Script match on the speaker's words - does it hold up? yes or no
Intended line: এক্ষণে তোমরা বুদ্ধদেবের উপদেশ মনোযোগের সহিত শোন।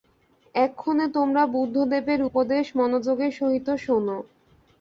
yes